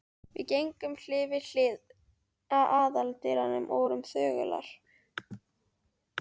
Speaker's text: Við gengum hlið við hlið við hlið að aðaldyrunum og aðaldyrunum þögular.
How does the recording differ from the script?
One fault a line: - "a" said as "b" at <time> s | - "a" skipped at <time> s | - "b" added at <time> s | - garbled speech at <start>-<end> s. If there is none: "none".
- "við hlið" skipped at 1.8 s
- "aðaldyrunum" said as "vorum" at 3.8 s